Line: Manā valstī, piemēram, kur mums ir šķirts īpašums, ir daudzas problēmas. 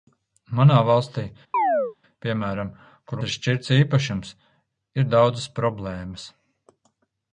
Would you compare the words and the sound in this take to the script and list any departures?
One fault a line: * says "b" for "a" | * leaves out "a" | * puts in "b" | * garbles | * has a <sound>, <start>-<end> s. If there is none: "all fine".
* has a chirp, 1.5-2.0 s
* leaves out "mums"